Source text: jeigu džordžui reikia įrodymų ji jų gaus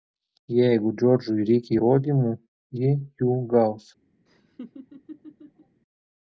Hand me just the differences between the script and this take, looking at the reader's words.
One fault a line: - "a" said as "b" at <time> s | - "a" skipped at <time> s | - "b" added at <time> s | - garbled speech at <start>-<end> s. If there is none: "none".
none